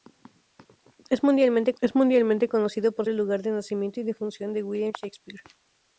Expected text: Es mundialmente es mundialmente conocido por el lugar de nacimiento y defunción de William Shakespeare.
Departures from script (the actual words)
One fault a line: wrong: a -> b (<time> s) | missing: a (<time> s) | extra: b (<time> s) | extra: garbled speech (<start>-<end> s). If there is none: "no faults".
no faults